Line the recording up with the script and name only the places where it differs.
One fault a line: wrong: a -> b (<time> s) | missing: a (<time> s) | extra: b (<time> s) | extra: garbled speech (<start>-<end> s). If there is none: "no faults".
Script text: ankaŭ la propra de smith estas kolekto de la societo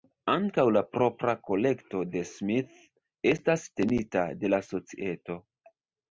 extra: kolekto (1.5 s)
wrong: kolekto -> tenita (3.8 s)